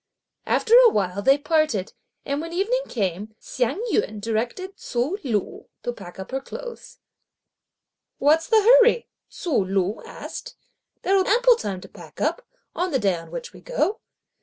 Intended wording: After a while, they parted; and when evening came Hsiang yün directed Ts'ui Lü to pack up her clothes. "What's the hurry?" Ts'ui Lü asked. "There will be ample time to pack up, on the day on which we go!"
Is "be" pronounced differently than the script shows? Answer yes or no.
yes